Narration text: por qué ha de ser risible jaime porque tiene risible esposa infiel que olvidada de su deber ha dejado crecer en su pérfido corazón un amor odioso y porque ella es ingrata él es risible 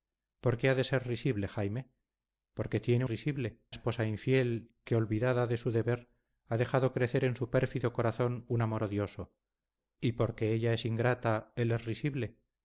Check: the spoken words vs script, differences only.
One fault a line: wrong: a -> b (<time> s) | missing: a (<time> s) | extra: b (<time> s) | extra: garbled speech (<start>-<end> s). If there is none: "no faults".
no faults